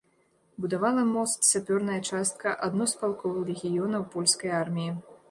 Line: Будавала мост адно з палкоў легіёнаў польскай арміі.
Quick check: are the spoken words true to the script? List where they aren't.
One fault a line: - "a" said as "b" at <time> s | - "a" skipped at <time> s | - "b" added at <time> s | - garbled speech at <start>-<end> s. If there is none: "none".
- "сапёрная частка" added at 1.5 s